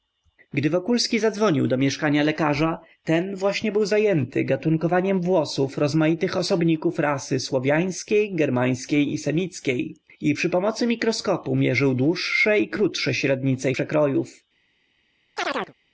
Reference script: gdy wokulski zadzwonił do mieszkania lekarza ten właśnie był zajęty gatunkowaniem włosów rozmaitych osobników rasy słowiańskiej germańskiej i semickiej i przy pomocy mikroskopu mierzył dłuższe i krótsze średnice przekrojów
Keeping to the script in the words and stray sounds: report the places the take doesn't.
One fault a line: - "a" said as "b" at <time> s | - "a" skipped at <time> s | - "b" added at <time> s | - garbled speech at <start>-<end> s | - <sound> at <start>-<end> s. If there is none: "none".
- chirp at 15.4-15.7 s